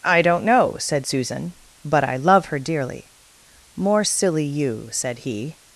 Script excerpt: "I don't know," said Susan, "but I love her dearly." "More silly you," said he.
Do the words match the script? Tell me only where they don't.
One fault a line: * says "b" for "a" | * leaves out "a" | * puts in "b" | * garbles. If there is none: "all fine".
all fine